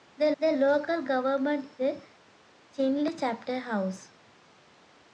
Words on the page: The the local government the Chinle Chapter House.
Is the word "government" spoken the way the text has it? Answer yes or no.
yes